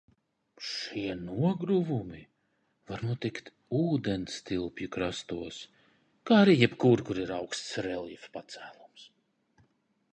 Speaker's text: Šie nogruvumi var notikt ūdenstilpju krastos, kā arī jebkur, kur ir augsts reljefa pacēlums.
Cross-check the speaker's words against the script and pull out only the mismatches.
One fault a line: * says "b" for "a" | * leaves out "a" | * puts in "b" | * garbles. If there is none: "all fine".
all fine